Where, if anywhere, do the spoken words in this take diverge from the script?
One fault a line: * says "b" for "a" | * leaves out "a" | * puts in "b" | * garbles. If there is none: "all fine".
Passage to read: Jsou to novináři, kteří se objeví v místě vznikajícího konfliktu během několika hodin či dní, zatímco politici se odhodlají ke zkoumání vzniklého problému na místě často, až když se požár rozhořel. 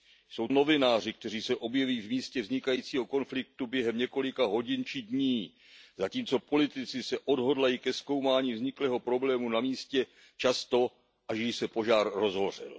* leaves out "to"